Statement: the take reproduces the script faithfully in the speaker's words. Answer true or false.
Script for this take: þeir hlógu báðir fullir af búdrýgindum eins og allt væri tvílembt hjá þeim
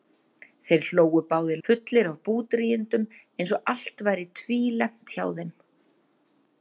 true